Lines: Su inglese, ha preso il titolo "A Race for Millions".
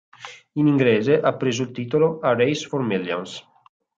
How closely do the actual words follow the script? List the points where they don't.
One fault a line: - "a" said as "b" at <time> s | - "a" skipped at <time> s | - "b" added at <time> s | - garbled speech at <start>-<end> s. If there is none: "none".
- "Su" said as "In" at 0.5 s